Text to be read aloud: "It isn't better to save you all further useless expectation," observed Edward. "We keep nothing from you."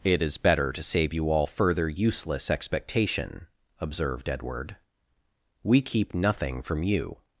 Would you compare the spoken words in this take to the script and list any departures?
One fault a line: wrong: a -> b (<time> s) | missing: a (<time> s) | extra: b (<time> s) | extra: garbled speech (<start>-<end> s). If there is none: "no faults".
wrong: isn't -> is (0.2 s)